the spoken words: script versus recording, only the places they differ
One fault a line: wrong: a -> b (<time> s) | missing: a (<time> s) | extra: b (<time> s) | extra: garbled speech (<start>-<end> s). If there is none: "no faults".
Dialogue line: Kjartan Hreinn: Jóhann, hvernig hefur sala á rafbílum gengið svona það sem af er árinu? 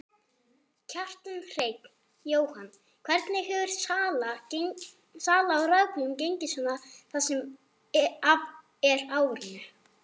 no faults